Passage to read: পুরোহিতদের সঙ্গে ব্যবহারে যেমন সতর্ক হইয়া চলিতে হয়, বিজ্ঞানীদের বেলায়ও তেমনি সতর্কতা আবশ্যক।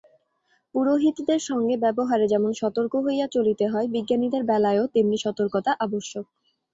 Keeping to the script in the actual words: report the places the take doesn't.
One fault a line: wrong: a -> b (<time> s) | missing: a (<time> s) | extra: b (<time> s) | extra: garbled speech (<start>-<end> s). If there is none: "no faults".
no faults